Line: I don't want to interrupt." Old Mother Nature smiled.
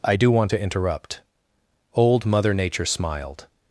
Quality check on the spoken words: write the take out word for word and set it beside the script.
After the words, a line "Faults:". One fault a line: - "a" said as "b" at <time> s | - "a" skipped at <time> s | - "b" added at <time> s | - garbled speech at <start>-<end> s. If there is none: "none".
I do want to interrupt." Old Mother Nature smiled.
Faults:
- "don't" said as "do" at 0.1 s